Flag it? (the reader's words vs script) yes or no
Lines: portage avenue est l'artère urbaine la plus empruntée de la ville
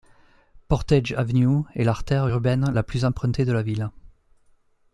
no